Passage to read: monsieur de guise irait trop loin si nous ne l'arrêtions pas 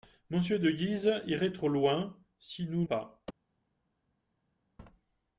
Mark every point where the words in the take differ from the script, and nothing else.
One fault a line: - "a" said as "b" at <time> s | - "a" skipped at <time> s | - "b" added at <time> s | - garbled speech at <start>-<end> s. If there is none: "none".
- "ne l'arrêtions" skipped at 2.9 s